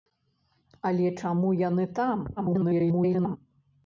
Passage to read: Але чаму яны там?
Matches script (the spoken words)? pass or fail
fail